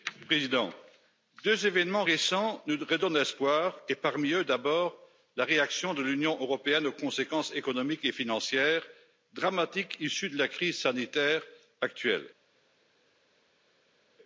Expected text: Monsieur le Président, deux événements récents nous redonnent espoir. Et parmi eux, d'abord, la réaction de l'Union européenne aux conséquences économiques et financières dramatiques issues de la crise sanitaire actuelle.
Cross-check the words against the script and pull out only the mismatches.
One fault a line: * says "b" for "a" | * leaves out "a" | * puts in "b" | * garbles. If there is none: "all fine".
all fine